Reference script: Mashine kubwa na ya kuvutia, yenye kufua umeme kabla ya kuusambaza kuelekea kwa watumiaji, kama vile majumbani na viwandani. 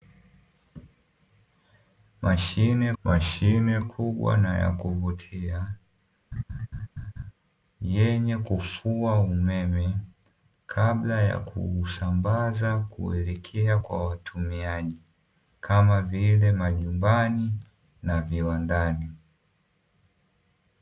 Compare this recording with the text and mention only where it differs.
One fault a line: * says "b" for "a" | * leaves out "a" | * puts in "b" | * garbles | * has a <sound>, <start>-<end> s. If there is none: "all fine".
* puts in "mashine"
* has a laugh, 6.3-7.3 s